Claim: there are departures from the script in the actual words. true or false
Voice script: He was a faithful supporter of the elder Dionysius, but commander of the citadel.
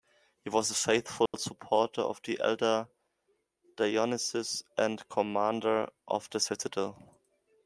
true